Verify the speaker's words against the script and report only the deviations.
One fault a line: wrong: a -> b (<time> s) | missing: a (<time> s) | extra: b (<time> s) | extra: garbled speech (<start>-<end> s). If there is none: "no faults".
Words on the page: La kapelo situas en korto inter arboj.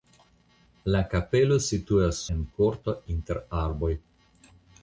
no faults